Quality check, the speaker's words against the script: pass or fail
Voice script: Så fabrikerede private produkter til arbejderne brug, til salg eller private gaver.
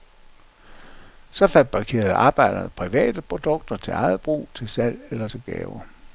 fail